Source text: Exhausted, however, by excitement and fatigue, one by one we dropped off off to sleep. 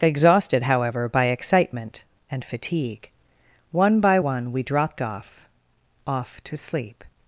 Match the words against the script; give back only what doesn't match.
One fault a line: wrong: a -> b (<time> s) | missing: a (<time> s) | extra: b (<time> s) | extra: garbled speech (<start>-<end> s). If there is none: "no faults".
no faults